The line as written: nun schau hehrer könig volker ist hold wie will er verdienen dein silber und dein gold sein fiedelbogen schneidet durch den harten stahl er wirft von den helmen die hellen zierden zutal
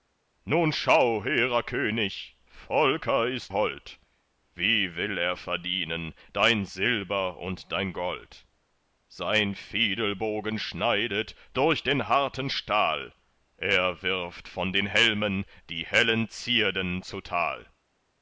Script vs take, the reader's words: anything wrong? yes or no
no